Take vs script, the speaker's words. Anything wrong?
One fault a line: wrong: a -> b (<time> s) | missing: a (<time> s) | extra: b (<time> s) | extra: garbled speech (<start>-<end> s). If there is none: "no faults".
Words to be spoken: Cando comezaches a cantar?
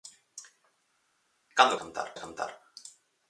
wrong: comezaches -> cantar (1.8 s)